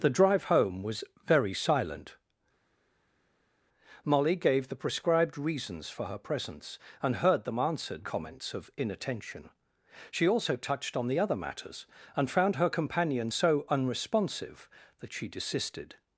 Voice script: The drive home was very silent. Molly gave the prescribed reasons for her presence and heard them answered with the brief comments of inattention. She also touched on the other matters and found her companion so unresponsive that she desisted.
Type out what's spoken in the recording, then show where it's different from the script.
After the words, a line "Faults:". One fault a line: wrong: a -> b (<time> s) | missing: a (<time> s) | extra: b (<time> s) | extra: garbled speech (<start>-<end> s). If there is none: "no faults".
The drive home was very silent. Molly gave the prescribed reasons for her presence and heard them answered comments of inattention. She also touched on the other matters and found her companion so unresponsive that she desisted.
Faults:
missing: with the brief (8.1 s)